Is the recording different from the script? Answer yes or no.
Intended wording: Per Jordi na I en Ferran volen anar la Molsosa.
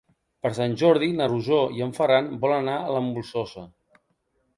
yes